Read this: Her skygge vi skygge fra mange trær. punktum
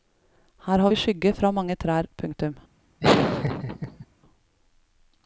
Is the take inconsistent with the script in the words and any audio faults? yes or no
yes